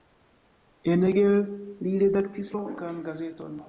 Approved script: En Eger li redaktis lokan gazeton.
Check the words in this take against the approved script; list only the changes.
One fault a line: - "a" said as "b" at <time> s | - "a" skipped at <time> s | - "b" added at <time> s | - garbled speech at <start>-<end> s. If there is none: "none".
none